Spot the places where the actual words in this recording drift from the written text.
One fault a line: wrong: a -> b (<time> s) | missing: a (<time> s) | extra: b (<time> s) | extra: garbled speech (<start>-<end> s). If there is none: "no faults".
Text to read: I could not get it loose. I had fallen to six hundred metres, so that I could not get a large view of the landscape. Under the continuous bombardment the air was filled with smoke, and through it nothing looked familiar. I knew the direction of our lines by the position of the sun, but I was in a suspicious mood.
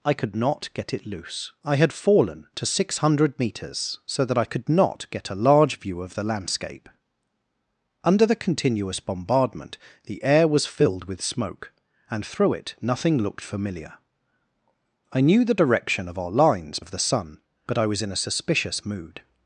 missing: by the position (16.8 s)